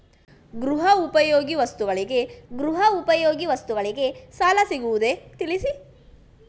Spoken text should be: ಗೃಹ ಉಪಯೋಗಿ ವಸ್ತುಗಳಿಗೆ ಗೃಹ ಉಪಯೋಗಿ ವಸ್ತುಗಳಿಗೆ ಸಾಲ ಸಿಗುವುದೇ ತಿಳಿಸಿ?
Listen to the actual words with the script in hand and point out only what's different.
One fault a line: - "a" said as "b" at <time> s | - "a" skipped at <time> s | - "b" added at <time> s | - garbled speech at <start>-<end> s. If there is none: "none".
none